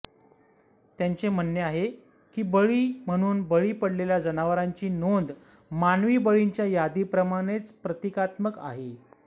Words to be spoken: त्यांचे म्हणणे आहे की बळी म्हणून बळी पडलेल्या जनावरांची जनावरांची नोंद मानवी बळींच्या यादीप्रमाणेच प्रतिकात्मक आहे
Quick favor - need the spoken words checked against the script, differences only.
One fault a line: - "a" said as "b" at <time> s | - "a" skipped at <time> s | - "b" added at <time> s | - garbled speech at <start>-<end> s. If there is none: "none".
- "जनावरांची" skipped at 4.9 s